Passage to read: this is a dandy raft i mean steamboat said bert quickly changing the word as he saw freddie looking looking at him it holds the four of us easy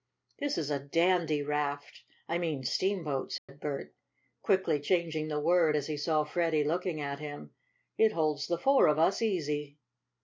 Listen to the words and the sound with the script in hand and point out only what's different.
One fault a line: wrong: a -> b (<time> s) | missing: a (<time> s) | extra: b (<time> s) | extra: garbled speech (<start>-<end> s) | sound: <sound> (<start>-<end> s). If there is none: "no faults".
sound: dropout (3.4-3.5 s)
missing: looking (7.0 s)